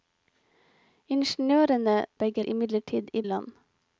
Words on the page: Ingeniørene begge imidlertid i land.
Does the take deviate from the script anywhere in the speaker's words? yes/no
no